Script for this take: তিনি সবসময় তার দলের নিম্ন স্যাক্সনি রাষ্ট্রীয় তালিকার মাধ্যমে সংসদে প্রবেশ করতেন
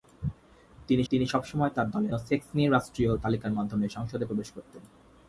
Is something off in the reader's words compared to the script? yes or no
yes